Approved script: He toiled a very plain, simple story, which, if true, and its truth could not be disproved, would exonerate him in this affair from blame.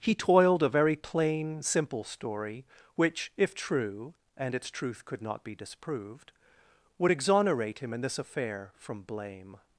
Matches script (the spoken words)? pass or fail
pass